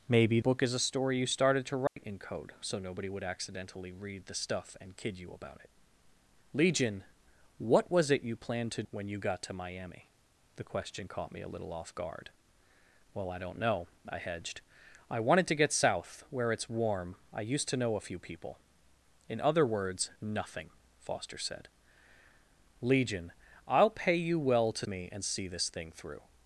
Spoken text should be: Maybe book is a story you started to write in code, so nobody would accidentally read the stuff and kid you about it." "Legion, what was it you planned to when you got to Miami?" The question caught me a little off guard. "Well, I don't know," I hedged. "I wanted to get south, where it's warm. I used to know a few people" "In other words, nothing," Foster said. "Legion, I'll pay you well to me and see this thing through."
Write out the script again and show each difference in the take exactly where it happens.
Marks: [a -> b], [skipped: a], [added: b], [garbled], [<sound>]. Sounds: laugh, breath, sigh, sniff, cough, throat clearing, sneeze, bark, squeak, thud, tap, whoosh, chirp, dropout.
Maybe book is a story you started to write [dropout] in code, so nobody would accidentally read the stuff and kid you about it." "Legion, what was it you planned to when you got to Miami?" The question caught me a little off guard. "Well, I don't know," I hedged. "I wanted to get south, where it's warm. I used to know a few people" "In other words, nothing," Foster said. "Legion, I'll pay you well to me and see this thing through."